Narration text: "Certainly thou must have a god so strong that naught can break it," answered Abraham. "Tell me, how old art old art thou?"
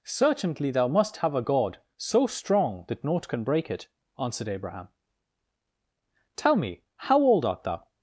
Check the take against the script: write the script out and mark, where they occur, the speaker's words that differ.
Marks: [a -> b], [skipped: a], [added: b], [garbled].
"Certainly thou must have a god so strong that naught can break it," answered Abraham. "Tell me, how old art [skipped: old art] thou?"